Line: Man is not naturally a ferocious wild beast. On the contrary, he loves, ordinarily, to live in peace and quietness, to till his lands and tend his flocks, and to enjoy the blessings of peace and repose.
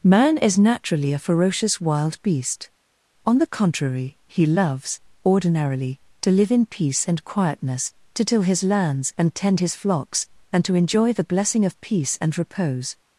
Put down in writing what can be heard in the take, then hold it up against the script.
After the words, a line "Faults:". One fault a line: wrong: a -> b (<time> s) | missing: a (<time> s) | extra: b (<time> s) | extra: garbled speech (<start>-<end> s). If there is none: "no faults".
Man is naturally a ferocious wild beast. On the contrary, he loves, ordinarily, to live in peace and quietness, to till his lands and tend his flocks, and to enjoy the blessing of peace and repose.
Faults:
missing: not (0.6 s)
wrong: blessings -> blessing (11.3 s)